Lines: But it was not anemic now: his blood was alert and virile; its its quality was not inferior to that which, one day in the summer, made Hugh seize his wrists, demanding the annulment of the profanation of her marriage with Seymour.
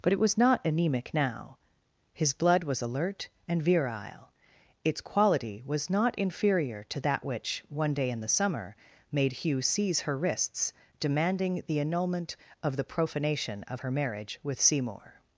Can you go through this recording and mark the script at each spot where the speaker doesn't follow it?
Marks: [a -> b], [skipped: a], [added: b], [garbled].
But it was not anemic now: his blood was alert and virile; its [skipped: its] quality was not inferior to that which, one day in the summer, made Hugh seize [his -> her] wrists, demanding the annulment of the profanation of her marriage with Seymour.